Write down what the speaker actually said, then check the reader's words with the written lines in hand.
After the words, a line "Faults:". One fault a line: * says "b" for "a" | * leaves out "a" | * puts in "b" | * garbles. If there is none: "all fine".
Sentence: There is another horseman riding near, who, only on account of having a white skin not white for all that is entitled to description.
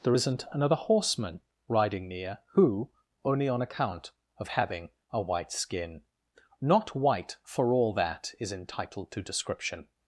There isn't another horseman riding near, who, only on account of having a white skin not white for all that is entitled to description.
Faults:
* says "isn't" for "is"